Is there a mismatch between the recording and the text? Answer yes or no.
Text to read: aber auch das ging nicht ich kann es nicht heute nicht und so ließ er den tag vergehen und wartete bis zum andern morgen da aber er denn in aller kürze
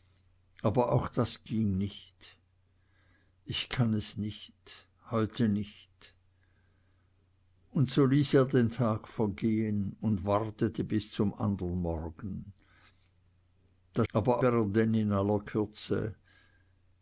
no